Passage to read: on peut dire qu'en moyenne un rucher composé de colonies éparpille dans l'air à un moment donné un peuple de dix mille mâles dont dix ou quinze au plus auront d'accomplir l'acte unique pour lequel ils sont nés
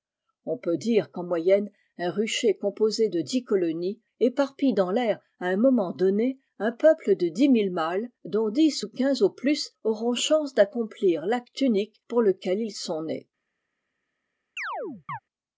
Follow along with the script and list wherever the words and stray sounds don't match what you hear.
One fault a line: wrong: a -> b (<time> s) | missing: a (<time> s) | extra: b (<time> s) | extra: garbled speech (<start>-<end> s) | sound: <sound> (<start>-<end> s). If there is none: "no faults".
extra: dix (3.2 s)
extra: chance (10.1 s)
sound: chirp (14.6-15.2 s)